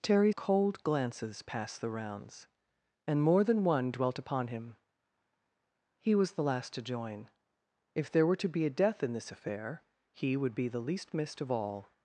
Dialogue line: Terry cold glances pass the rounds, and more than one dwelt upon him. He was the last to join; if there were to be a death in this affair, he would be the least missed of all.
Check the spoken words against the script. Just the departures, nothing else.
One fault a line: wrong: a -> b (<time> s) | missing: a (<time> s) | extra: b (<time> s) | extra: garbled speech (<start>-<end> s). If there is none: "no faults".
no faults